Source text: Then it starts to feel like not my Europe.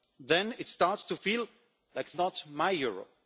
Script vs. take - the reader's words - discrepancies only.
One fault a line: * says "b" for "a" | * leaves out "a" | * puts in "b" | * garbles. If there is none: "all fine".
all fine